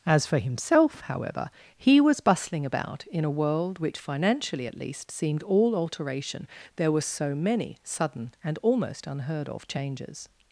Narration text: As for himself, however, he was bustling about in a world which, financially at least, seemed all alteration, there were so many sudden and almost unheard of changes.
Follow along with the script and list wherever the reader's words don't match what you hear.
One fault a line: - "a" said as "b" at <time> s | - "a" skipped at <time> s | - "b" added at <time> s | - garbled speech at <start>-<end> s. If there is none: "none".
none